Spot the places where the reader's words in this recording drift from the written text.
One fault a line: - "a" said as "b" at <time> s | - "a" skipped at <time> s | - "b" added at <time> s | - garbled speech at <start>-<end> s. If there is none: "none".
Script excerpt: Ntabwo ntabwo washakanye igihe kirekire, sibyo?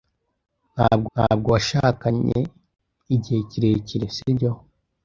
none